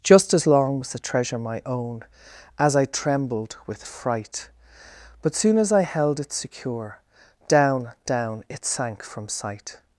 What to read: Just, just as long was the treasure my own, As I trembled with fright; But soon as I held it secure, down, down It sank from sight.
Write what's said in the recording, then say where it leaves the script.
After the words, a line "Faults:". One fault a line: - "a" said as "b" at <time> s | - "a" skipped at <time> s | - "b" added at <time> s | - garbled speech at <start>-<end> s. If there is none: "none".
Just, as long was the treasure my own, As I trembled with fright; But soon as I held it secure, down, down It sank from sight.
Faults:
- "just" skipped at 0.3 s